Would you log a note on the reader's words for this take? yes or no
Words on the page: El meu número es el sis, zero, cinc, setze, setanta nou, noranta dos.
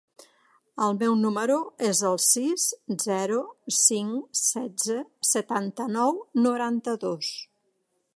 no